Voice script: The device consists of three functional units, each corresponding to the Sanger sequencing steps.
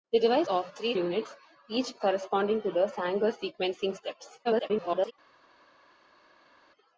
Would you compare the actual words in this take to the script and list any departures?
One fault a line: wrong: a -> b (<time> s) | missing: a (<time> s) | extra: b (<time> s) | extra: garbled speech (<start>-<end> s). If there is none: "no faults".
missing: consists (0.5 s)
missing: functional (0.9 s)
extra: garbled speech (4.4-5.1 s)